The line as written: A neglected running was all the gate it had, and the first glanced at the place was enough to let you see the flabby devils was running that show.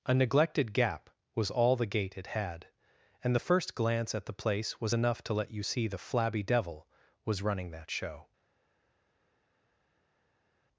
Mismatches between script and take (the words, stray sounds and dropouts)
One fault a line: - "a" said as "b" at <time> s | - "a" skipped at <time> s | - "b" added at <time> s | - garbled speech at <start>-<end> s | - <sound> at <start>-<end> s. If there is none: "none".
- "running" said as "gap" at 0.7 s
- "glanced" said as "glance" at 3.7 s
- "devils" said as "devil" at 6.4 s